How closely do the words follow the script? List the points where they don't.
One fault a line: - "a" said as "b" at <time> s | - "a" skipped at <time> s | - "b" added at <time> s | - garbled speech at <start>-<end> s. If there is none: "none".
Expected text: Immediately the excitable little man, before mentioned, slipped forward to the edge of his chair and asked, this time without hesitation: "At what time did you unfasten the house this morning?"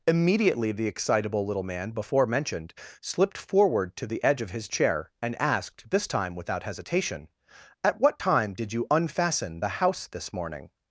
none